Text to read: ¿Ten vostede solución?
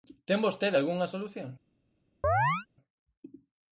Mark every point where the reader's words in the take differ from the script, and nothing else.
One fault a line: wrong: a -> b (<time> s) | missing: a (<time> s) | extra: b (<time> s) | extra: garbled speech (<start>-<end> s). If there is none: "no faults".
extra: algunha (0.8 s)